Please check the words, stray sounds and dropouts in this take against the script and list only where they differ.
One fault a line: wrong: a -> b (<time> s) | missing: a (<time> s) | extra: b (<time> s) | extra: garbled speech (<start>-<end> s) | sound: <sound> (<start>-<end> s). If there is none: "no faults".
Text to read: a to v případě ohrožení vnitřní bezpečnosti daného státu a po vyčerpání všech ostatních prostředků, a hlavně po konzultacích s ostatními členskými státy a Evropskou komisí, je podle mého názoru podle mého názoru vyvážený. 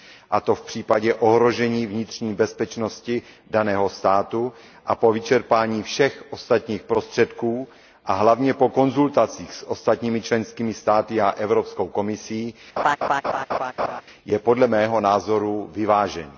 sound: laugh (12.8-14.0 s)
missing: podle mého názoru (15.7 s)